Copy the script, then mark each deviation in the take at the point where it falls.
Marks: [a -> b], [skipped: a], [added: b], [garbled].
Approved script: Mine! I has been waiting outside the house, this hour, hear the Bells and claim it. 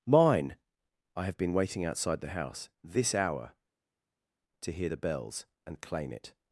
Mine! I [has -> have] been waiting outside the house, this hour, [added: to] hear the Bells and claim it.